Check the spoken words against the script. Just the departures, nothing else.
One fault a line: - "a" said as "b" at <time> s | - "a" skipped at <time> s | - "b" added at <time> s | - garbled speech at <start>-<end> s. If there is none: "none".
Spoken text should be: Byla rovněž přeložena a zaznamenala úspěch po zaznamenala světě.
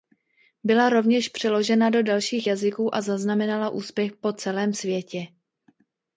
- "do dalších jazyků" added at 1.9 s
- "zaznamenala" said as "celém" at 4.3 s